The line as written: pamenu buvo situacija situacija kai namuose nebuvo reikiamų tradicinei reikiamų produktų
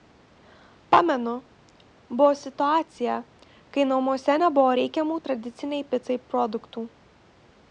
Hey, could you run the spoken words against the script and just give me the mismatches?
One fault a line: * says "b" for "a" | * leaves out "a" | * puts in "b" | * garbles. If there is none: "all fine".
* leaves out "situacija"
* says "picai" for "reikiamų"